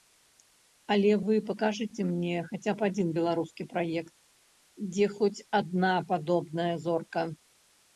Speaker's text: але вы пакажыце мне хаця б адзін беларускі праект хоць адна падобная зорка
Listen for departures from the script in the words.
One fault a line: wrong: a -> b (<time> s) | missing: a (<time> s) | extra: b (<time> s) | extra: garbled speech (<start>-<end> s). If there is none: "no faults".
extra: дзе (4.9 s)